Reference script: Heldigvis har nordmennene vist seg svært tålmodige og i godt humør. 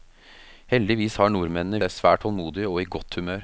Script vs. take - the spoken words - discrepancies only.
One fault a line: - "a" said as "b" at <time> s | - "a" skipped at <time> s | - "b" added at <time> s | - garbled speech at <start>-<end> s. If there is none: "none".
- "vist" skipped at 1.8 s